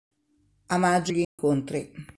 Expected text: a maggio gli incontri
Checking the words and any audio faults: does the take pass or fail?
fail